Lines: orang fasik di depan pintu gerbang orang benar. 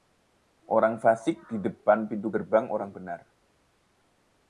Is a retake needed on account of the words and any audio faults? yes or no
no